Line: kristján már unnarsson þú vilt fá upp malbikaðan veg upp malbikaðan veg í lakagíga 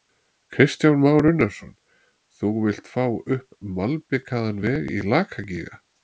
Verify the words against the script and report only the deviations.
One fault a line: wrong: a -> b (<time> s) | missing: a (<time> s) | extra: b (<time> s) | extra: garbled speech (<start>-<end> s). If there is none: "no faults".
missing: upp malbikaðan veg (4.9 s)